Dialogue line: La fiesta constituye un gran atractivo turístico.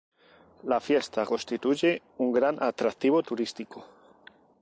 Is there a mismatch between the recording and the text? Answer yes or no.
no